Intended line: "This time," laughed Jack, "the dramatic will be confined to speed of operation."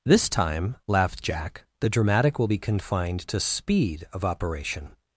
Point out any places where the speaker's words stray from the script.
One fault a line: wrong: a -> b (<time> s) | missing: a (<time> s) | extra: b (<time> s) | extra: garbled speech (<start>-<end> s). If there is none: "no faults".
no faults